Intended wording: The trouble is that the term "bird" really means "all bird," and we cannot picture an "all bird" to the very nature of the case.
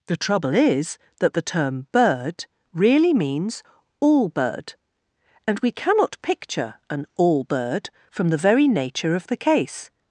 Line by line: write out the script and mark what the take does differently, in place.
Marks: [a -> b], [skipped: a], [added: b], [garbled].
The trouble is that the term "bird" really means "all bird," and we cannot picture an "all bird" [to -> from] the very nature of the case.